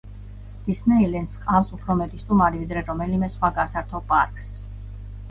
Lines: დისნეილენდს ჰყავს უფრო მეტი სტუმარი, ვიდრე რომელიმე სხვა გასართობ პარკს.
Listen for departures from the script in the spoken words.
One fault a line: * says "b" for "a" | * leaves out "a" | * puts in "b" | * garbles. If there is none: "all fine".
all fine